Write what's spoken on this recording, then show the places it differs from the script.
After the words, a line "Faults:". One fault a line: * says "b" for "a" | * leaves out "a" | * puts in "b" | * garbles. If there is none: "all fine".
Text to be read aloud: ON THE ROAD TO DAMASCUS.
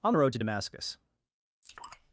ON THE ROAD TO DAMASCUS.
Faults:
all fine